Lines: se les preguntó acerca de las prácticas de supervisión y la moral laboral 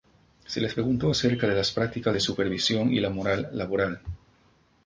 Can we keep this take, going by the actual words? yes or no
yes